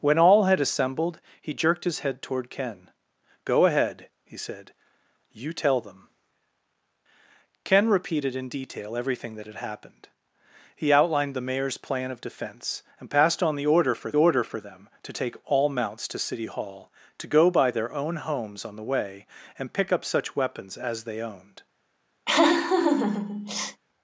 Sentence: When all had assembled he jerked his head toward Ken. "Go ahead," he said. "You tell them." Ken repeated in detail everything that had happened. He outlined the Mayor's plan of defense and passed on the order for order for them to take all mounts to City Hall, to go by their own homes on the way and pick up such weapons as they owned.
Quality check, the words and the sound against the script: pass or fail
fail